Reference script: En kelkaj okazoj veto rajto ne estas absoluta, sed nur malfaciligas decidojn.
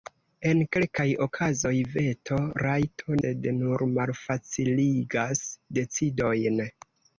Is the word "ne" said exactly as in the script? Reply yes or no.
no